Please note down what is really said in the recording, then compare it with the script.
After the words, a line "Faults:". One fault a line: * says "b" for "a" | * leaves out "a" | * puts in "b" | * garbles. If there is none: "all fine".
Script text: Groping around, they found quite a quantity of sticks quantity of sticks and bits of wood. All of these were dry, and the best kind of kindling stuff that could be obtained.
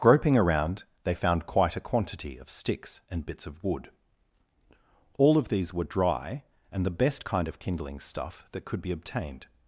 Groping around, they found quite a quantity of sticks and bits of wood. All of these were dry, and the best kind of kindling stuff that could be obtained.
Faults:
* leaves out "quantity of sticks"